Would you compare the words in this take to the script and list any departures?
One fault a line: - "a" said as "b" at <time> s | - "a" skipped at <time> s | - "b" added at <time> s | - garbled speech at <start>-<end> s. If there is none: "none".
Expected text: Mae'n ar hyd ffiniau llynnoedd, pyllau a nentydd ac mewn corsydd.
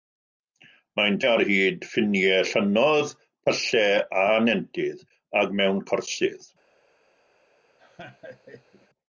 none